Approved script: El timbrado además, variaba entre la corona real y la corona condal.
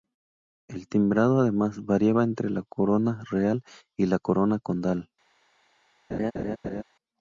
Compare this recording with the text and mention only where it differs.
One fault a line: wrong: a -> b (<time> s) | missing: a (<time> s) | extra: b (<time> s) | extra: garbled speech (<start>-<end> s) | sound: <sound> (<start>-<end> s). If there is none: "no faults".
sound: laugh (6.1-6.8 s)